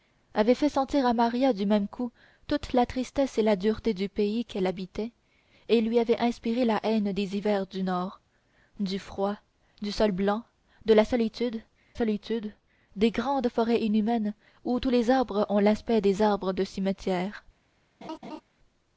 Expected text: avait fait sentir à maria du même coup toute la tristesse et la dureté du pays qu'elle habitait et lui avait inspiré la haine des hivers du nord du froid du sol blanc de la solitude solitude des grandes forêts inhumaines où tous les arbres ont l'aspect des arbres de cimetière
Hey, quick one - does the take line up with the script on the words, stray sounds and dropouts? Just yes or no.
no